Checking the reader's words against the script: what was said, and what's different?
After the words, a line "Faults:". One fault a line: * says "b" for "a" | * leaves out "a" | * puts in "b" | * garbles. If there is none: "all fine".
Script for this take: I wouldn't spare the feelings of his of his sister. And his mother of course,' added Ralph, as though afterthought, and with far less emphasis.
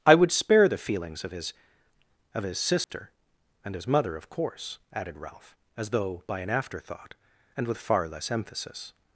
I would spare the feelings of his of his sister. And his mother of course,' added Ralph, as though by an afterthought, and with far less emphasis.
Faults:
* says "would" for "wouldn't"
* puts in "by an"